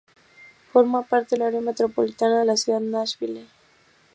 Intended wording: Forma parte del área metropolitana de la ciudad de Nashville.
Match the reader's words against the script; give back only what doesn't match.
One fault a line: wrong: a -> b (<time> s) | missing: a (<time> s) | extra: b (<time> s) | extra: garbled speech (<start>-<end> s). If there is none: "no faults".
no faults